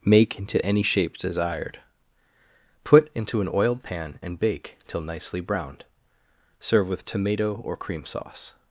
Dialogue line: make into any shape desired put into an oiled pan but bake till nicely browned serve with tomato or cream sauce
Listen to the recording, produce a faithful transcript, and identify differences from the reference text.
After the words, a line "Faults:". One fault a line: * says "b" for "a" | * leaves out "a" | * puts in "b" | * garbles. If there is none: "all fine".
make into any shape desired put into an oiled pan and bake till nicely browned serve with tomato or cream sauce
Faults:
* says "and" for "but"